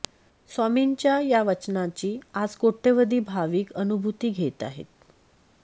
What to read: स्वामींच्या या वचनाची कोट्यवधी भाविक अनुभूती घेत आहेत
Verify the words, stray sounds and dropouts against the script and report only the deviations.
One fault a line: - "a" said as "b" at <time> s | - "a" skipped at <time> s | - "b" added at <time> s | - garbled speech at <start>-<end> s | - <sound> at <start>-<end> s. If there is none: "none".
- "आज" added at 2.3 s